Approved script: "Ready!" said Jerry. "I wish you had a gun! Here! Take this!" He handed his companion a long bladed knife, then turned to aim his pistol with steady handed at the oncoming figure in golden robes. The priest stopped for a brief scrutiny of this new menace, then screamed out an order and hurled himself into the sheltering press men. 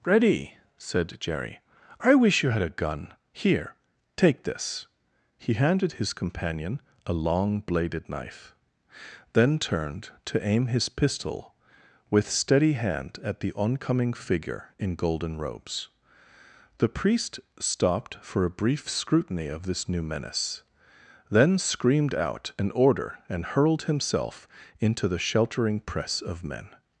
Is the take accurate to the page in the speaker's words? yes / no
no